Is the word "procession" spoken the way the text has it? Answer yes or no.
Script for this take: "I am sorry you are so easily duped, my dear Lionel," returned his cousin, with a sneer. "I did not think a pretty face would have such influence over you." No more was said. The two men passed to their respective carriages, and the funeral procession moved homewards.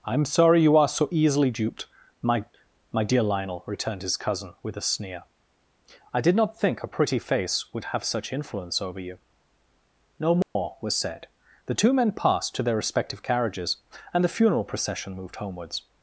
yes